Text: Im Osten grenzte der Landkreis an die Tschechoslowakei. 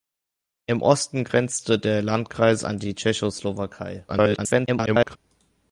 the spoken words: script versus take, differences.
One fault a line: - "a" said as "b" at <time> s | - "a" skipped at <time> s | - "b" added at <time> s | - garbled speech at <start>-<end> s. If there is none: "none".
- garbled speech at 4.1-5.2 s